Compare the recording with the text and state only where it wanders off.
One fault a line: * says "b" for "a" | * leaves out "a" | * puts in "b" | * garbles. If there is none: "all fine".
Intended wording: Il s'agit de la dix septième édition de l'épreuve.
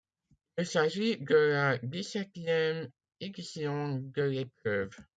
all fine